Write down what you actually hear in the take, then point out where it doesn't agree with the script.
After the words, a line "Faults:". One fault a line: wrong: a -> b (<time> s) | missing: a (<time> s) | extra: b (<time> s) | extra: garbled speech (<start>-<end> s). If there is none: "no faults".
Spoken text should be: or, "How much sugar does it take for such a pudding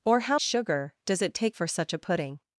or, "How sugar does it take for such a pudding
Faults:
missing: much (0.4 s)